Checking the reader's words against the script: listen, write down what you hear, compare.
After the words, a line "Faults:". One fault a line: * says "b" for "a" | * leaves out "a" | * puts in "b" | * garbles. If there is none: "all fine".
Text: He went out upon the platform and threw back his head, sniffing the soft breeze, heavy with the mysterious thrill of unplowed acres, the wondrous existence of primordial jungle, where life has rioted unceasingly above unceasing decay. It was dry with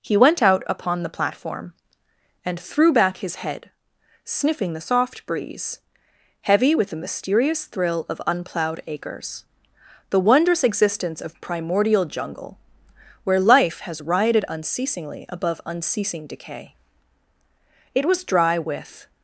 He went out upon the platform and threw back his head, sniffing the soft breeze, heavy with the mysterious thrill of unplowed acres, the wondrous existence of primordial jungle, where life has rioted unceasingly above unceasing decay. It was dry with
Faults:
all fine